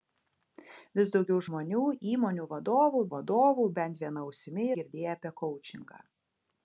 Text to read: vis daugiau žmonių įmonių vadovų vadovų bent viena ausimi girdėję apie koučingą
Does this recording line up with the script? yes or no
yes